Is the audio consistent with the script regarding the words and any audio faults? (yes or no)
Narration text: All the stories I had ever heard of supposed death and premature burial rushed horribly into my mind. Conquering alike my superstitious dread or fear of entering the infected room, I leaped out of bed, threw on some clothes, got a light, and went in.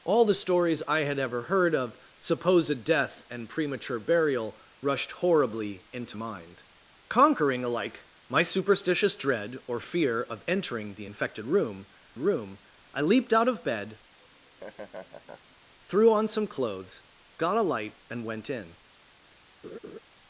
no